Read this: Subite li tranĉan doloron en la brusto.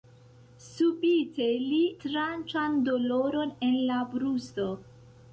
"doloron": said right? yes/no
yes